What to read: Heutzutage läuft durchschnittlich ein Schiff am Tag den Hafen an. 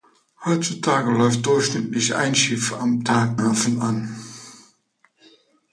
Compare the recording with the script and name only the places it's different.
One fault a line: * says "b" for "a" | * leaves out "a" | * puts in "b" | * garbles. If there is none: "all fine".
* leaves out "den"